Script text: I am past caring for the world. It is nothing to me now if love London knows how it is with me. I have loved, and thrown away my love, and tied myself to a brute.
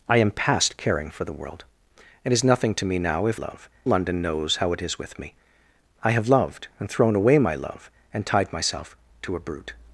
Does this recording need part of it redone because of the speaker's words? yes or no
no